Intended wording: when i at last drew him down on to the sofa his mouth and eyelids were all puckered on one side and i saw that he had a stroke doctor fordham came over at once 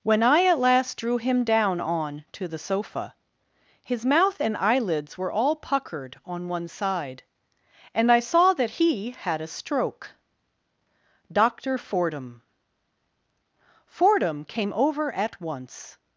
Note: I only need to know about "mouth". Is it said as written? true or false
true